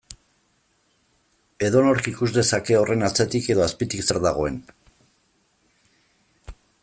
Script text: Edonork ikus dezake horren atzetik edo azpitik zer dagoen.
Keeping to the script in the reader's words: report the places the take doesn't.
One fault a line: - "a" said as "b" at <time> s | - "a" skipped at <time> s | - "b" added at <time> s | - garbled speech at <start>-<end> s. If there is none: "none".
none